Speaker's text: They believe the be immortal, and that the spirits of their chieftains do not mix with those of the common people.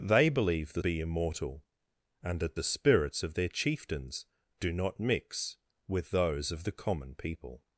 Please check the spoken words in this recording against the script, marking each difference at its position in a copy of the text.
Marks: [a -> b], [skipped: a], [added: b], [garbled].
They believe the be immortal, and that the spirits of their chieftains do not mix with those of the common people.